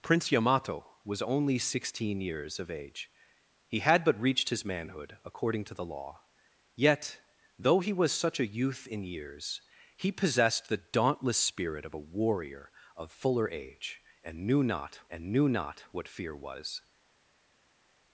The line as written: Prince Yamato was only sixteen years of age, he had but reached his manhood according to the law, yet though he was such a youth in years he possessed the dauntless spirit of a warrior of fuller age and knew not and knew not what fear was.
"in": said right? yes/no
yes